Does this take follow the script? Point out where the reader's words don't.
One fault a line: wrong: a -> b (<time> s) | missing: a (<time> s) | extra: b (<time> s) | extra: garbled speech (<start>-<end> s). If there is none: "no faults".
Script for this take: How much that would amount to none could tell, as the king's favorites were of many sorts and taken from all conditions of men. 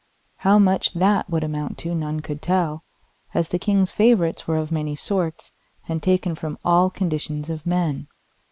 no faults